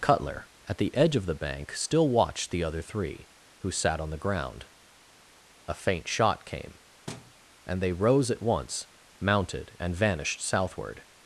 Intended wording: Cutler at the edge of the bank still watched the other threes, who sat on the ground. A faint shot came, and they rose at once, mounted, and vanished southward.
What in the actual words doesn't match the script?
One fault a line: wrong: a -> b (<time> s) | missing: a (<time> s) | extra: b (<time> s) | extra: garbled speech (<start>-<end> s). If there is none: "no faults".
wrong: threes -> three (2.8 s)